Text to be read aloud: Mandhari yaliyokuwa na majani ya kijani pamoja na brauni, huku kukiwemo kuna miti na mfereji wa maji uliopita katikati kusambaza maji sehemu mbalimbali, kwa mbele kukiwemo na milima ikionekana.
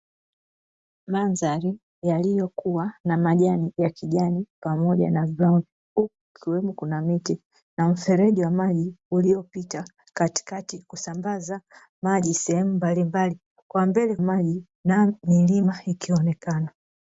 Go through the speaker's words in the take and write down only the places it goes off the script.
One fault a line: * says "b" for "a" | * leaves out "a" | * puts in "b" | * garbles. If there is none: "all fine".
* says "maji" for "kukiwemo"